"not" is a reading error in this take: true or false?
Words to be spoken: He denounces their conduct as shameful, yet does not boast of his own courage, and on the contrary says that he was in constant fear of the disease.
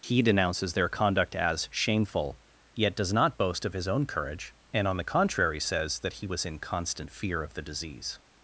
false